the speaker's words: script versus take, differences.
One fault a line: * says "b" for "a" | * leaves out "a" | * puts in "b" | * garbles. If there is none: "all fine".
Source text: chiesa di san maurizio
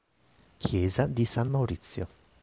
all fine